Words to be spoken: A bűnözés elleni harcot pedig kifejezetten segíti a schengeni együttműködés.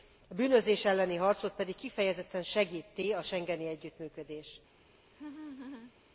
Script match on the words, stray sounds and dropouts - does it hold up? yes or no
no